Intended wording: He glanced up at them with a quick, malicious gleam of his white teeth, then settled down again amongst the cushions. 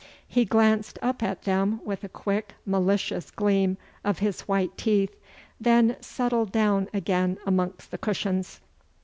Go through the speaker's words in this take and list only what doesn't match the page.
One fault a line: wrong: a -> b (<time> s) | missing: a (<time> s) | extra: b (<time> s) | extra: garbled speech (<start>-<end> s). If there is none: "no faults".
no faults